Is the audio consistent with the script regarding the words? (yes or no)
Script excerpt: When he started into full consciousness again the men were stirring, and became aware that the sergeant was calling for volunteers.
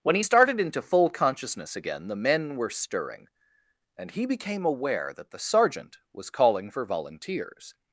no